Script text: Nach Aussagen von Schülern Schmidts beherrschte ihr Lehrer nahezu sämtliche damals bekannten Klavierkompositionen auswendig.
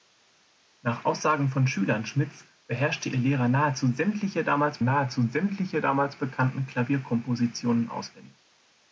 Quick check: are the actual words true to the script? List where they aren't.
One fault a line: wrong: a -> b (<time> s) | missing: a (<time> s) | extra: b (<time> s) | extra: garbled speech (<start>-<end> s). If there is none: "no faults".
extra: nahezu sämtliche damals (4.8 s)